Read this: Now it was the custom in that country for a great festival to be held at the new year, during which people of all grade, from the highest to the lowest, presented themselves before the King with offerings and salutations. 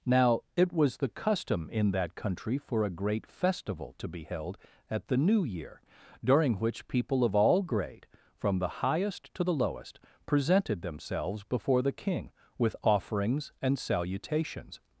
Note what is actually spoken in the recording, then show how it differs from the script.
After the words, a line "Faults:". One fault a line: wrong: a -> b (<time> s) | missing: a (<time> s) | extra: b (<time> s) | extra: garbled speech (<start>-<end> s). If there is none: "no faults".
Now it was the custom in that country for a great festival to be held at the new year, during which people of all grade, from the highest to the lowest, presented themselves before the King with offerings and salutations.
Faults:
no faults